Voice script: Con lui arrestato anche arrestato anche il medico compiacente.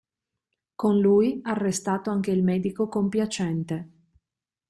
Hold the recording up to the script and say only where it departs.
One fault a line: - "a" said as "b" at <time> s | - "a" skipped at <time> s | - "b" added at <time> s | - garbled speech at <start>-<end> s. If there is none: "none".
- "arrestato anche" skipped at 2.3 s